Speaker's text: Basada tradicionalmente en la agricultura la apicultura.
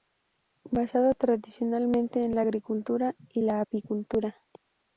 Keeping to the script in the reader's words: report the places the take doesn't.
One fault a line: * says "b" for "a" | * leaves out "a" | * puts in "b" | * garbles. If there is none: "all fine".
* puts in "y"